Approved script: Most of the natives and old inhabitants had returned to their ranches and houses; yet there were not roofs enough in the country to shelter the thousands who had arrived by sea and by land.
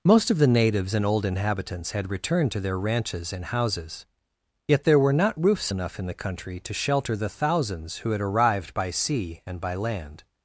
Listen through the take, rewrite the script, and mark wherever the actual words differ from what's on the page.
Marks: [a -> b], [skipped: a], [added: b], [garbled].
Most of the natives and old inhabitants had returned to their ranches and houses; yet there were not roofs enough in the country to shelter the thousands who had arrived by sea and by land.